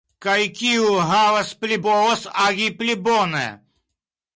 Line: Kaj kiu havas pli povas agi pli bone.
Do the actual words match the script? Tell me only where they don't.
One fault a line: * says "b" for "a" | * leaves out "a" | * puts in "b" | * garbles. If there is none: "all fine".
all fine